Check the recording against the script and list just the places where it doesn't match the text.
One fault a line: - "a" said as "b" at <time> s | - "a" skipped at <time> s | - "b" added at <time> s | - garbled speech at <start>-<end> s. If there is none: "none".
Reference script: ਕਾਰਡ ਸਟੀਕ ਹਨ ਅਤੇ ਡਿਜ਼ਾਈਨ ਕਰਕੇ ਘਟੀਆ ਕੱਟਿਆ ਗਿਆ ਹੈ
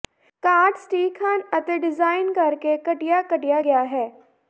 none